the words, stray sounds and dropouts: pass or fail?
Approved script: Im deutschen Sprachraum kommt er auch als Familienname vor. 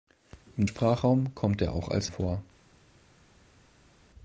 fail